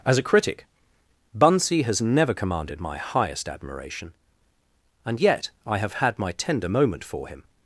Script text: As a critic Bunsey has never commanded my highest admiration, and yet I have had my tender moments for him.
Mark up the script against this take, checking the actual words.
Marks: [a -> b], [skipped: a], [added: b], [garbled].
As a critic Bunsey has never commanded my highest admiration, and yet I have had my tender [moments -> moment] for him.